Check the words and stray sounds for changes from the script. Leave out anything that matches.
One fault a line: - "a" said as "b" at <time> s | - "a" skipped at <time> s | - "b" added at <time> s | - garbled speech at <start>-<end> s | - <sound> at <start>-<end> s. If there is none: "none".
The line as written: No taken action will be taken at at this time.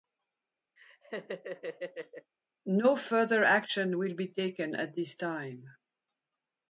- laugh at 0.8-2.3 s
- "taken" said as "further" at 3.0 s
- "at" skipped at 4.9 s